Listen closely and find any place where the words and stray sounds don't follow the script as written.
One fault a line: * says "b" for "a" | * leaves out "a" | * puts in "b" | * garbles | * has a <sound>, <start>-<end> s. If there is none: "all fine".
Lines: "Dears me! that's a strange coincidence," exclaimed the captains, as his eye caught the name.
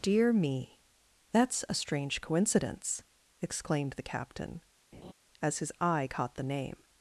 * says "Dear" for "Dears"
* says "captain" for "captains"
* has a laugh, 4.9-5.1 s